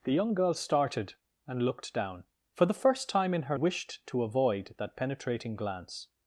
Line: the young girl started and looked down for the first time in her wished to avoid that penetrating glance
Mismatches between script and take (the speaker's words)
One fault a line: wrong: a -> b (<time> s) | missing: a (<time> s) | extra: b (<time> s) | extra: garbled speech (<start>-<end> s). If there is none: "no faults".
no faults